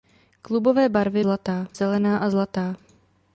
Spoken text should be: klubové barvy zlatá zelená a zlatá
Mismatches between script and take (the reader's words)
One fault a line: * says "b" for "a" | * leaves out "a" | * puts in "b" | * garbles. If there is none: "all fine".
all fine